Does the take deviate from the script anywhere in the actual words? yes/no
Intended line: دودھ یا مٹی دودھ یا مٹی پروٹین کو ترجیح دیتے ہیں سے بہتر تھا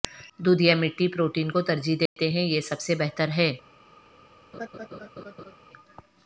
yes